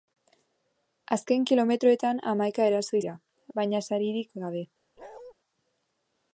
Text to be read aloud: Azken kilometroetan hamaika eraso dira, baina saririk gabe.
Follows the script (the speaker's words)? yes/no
yes